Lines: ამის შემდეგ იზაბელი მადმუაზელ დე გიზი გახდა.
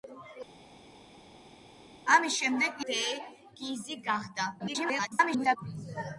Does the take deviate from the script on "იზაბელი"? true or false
true